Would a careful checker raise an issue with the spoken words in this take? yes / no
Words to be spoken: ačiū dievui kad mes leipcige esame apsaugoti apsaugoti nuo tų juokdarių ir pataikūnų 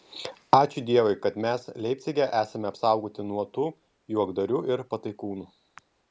yes